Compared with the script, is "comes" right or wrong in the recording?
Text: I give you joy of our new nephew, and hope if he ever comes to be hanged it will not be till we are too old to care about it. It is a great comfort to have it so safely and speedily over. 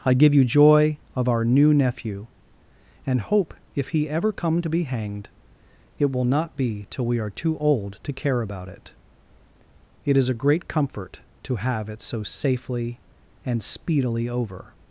wrong